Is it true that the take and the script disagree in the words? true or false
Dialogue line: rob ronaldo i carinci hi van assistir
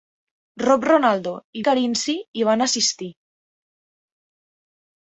false